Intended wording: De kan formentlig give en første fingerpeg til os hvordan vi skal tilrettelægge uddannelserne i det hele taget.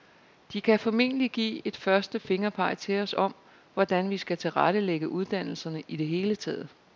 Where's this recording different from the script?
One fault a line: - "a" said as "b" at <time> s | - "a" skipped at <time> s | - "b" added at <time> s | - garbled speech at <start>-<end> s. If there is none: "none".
- "en" said as "et" at 1.7 s
- "om" added at 3.2 s